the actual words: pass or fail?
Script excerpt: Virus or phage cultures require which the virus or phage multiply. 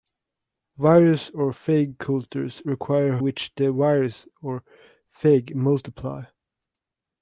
pass